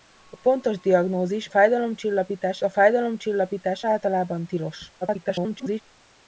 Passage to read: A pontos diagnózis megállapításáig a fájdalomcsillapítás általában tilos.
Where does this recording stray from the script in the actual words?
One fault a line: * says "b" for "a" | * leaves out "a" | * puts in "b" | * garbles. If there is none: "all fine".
* says "fájdalomcsillapítás" for "megállapításáig"
* garbles